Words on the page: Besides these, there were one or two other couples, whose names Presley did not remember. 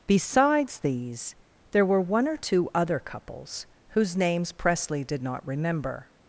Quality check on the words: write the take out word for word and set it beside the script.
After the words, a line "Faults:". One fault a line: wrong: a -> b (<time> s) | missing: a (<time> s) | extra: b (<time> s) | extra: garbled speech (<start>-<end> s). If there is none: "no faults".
Besides these, there were one or two other couples, whose names Presley did not remember.
Faults:
no faults